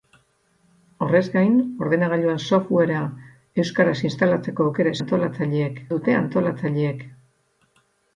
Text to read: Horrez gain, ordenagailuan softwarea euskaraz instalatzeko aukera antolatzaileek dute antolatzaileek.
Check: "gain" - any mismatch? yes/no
no